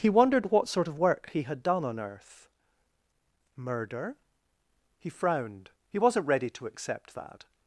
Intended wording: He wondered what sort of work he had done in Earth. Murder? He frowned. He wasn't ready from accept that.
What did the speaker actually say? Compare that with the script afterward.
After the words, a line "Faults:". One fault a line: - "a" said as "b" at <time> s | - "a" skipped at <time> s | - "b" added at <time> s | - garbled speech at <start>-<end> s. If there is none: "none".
He wondered what sort of work he had done on Earth. Murder? He frowned. He wasn't ready to accept that.
Faults:
- "in" said as "on" at 1.8 s
- "from" said as "to" at 6.5 s